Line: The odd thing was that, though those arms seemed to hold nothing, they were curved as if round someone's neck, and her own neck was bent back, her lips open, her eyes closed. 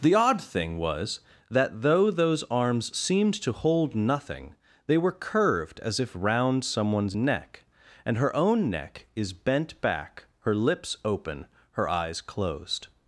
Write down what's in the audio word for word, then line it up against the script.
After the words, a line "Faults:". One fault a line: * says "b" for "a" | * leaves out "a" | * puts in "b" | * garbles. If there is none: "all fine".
The odd thing was that, though those arms seemed to hold nothing, they were curved as if round someone's neck, and her own neck is bent back, her lips open, her eyes closed.
Faults:
* says "is" for "was"